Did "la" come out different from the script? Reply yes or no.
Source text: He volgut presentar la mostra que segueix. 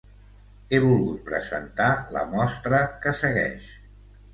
no